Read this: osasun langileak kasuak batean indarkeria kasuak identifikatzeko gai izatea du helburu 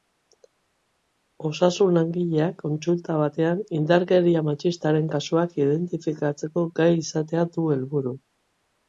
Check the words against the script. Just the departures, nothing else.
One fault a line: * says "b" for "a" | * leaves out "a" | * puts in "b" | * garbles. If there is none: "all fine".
* says "kontsulta" for "kasuak"
* puts in "matxistaren"